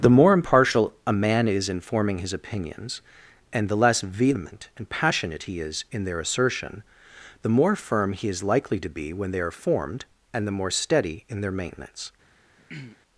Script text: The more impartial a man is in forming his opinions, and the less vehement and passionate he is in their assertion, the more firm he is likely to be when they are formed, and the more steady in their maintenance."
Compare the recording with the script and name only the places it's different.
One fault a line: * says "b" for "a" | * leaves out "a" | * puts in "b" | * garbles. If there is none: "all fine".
all fine